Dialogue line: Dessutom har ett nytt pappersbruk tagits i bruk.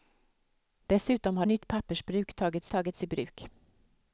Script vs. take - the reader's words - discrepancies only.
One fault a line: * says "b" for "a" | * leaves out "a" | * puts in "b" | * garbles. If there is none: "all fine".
* leaves out "ett"
* puts in "tagits"